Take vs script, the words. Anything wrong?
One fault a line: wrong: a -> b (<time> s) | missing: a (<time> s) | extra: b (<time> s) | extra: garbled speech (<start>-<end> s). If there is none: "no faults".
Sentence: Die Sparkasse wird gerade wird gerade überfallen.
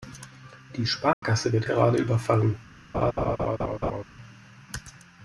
missing: wird gerade (2.0 s)